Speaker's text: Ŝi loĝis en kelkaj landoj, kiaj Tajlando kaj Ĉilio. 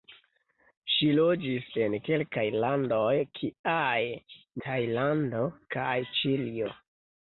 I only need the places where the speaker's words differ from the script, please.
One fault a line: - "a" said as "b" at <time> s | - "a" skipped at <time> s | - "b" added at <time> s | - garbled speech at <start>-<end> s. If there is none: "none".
none